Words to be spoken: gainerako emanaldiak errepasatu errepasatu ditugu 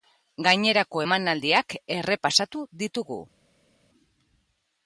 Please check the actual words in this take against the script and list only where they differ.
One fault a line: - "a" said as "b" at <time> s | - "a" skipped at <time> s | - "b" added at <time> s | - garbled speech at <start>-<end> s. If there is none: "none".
- "errepasatu" skipped at 2.6 s